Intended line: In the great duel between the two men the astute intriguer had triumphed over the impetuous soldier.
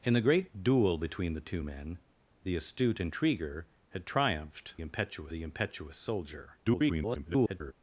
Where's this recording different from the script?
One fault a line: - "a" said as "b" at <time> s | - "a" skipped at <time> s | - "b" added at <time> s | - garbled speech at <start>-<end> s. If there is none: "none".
- "over" said as "impetuous" at 4.8 s
- garbled speech at 6.6-7.7 s